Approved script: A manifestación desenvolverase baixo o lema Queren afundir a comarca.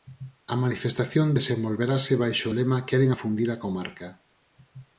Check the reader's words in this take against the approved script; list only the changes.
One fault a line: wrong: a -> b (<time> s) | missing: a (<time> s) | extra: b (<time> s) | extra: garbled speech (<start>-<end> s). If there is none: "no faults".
no faults